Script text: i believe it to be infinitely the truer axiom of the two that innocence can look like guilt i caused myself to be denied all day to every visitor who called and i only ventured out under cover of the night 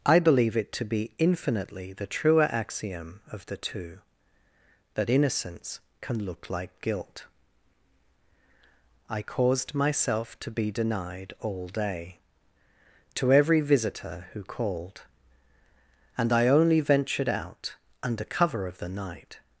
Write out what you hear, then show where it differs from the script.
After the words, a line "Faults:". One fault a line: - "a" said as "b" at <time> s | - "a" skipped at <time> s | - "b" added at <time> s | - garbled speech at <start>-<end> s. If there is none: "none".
i believe it to be infinitely the truer axiom of the two that innocence can look like guilt i caused myself to be denied all day to every visitor who called and i only ventured out under cover of the night
Faults:
none